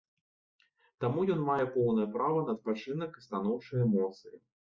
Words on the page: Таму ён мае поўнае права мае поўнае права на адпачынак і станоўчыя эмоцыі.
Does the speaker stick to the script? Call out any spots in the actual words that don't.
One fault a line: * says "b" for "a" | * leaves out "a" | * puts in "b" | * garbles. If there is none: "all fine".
* leaves out "мае поўнае права"